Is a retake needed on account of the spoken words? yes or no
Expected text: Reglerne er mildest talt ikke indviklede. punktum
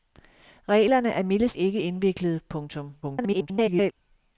yes